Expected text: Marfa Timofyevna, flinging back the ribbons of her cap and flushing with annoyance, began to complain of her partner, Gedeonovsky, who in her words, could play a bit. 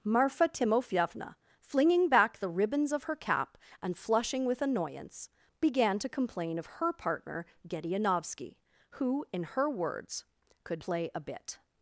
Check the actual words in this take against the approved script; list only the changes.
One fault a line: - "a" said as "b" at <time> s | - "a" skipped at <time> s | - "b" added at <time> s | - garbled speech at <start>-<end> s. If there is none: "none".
none